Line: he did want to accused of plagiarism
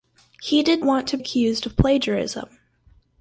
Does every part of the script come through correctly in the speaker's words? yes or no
yes